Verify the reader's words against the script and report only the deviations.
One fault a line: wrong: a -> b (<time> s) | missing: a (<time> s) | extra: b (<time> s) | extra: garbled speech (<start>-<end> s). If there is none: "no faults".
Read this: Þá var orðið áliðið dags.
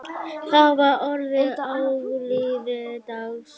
no faults